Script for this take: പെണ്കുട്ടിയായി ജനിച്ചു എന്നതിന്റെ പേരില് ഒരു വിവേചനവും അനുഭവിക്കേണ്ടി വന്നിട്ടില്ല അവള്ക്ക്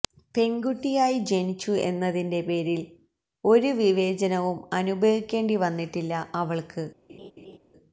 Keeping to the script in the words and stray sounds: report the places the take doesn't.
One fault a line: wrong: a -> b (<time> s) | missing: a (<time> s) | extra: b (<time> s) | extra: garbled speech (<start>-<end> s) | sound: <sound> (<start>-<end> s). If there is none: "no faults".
sound: laugh (7.1-7.6 s)